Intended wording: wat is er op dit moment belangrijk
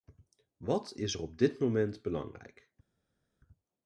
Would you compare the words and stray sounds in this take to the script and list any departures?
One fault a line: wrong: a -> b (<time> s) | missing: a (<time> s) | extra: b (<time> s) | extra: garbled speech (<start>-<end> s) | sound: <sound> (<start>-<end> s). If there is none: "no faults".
no faults